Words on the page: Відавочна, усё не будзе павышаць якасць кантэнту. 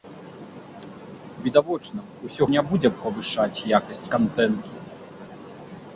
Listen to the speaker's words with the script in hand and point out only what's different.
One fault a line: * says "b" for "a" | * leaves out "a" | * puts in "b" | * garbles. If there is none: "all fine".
all fine